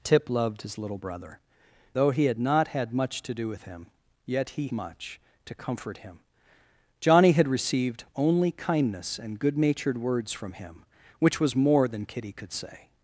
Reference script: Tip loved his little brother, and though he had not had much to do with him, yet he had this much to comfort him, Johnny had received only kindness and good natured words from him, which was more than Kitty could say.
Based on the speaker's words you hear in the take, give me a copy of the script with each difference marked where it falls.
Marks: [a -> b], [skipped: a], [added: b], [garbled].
Tip loved his little brother, [skipped: and] though he had not had much to do with him, yet he [skipped: had this] much to comfort him, Johnny had received only kindness and good natured words from him, which was more than Kitty could say.